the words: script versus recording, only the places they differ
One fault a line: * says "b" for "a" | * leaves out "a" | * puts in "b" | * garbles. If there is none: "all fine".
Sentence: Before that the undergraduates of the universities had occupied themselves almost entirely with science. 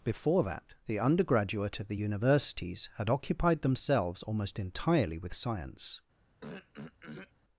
* says "undergraduate" for "undergraduates"